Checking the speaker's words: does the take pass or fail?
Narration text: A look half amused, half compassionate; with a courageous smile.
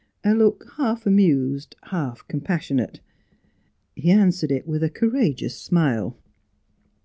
fail